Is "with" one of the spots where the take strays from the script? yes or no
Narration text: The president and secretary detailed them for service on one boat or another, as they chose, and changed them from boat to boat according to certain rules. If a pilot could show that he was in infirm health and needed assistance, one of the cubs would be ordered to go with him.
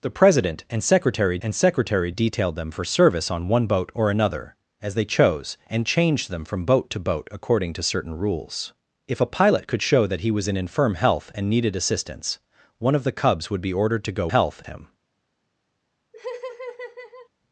yes